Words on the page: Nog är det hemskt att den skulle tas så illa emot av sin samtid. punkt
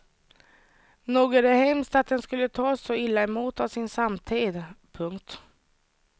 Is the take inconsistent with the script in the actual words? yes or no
no